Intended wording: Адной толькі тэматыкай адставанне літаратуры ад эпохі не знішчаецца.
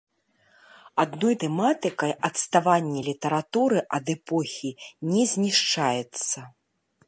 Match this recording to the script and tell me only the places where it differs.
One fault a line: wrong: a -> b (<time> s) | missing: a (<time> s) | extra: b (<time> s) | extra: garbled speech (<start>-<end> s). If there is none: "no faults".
missing: толькі (1.4 s)